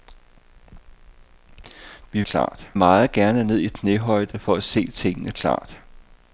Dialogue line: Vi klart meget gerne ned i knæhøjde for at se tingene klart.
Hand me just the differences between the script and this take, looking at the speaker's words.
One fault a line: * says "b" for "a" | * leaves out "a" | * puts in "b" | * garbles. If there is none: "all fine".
all fine